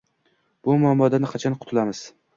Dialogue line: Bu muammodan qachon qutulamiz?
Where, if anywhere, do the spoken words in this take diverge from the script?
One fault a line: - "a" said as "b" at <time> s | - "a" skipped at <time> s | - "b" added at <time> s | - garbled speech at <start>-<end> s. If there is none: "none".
none